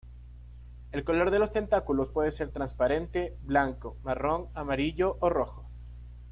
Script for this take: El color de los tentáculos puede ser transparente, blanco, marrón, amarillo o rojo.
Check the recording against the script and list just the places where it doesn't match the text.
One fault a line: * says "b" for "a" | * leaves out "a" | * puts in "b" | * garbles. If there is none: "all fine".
all fine